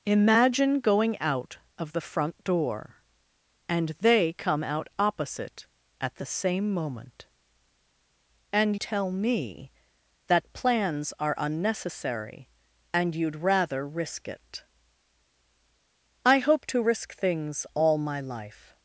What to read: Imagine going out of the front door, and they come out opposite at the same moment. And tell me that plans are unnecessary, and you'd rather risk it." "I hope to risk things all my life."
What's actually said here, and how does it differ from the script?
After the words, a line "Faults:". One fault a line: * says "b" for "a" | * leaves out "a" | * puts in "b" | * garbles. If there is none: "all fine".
Imagine going out of the front door, and they come out opposite at the same moment. And tell me that plans are unnecessary, and you'd rather risk it." "I hope to risk things all my life."
Faults:
all fine